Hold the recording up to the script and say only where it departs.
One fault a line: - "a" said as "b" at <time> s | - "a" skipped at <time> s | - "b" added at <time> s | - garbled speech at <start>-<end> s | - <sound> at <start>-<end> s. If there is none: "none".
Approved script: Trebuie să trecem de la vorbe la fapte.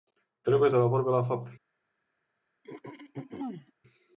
- "să trecem" skipped at 0.7 s
- throat clearing at 2.6-3.7 s